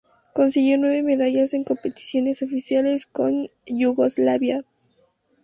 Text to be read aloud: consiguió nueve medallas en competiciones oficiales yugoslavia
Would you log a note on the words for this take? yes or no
yes